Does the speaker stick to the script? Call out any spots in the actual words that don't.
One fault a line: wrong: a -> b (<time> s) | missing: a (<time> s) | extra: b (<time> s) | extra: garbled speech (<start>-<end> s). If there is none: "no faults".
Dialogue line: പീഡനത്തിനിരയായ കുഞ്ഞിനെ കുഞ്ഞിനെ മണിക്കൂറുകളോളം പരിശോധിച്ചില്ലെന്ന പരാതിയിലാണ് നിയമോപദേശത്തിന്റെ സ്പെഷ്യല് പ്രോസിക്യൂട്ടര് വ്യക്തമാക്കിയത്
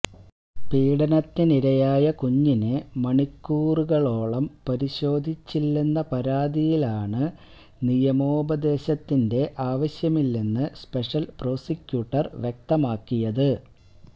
missing: കുഞ്ഞിനെ (2.7 s)
extra: ആവശ്യമില്ലെന്ന് (9.7 s)